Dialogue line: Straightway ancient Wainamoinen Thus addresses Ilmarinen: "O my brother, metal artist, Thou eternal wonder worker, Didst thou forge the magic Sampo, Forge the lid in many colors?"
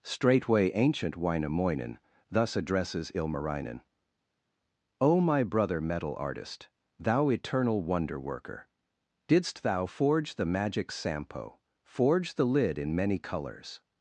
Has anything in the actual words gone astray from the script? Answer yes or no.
no